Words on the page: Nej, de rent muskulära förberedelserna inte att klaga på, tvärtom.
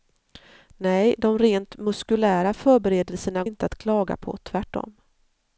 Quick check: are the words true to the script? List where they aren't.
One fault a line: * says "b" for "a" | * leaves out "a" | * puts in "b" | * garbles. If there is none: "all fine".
all fine